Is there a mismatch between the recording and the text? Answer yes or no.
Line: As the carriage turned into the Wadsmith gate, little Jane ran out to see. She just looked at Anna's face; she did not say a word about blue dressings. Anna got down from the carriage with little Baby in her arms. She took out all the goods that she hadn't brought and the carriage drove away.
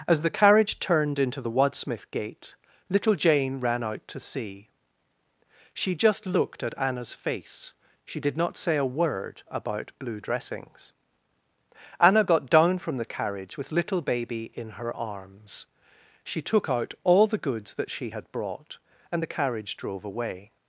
yes